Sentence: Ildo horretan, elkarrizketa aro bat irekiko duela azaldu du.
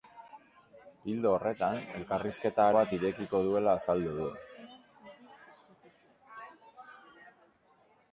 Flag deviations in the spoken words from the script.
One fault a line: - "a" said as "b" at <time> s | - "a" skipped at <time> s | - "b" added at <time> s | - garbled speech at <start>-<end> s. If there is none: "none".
- "aro" skipped at 2.7 s